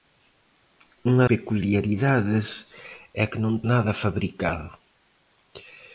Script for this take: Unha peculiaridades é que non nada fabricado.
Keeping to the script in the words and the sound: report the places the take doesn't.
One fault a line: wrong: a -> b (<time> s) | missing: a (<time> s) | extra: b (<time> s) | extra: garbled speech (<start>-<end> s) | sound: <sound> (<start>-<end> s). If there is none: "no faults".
no faults